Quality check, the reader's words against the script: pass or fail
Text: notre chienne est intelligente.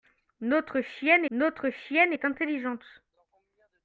fail